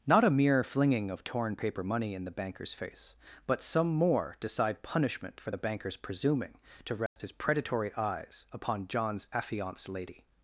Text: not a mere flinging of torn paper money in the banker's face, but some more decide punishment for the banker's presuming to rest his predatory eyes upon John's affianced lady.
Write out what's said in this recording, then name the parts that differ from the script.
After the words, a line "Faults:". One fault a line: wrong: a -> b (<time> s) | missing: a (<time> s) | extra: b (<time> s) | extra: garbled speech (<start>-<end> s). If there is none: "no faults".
not a mere flinging of torn paper money in the banker's face, but some more decide punishment for the banker's presuming to rest his predatory eyes upon John's affianced lady.
Faults:
no faults